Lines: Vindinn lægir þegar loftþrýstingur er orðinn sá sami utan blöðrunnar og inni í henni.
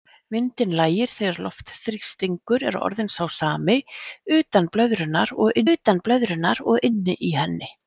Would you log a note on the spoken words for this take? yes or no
yes